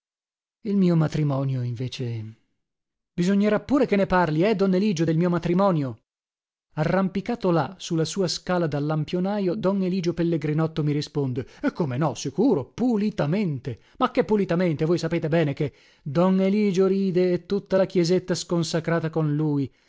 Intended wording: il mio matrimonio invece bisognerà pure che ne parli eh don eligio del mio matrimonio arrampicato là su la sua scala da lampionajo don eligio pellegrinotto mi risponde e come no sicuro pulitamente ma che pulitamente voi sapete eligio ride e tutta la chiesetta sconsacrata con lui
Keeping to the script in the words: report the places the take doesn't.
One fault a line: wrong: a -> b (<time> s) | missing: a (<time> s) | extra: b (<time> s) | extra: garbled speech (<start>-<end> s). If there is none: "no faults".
extra: bene che don (15.3 s)